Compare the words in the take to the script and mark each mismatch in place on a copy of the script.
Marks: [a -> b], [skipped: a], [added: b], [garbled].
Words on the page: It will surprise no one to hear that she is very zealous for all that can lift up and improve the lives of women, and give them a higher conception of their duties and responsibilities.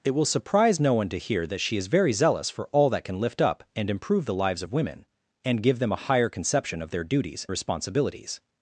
It will surprise no one to hear that she is very zealous for all that can lift up and improve the lives of women, and give them a higher conception of their duties [skipped: and] responsibilities.